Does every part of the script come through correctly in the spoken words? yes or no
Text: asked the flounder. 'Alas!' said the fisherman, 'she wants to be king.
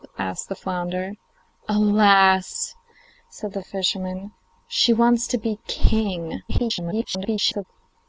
no